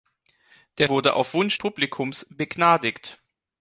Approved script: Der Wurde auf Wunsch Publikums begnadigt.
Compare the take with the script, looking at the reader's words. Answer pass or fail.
pass